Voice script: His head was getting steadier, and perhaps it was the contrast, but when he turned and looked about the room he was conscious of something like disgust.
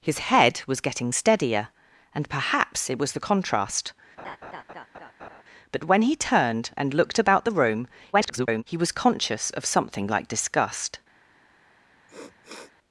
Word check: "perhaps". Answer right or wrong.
right